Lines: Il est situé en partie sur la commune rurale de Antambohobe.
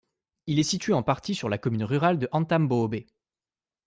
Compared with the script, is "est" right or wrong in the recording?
right